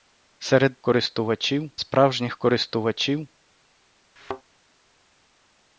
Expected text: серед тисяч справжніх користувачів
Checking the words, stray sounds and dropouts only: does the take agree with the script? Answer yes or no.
no